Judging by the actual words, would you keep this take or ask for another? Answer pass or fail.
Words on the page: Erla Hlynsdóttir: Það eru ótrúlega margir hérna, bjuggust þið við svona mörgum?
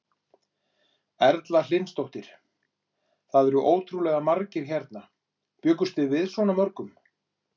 pass